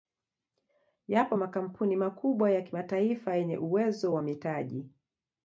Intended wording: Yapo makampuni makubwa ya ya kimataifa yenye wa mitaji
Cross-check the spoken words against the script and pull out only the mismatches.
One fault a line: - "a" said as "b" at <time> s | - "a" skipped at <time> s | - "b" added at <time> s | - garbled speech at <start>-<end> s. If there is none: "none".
- "ya" skipped at 2.6 s
- "uwezo" added at 3.6 s